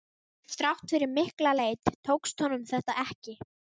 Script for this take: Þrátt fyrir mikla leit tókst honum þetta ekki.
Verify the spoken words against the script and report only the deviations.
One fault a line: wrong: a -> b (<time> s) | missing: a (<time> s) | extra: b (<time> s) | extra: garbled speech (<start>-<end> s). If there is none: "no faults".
no faults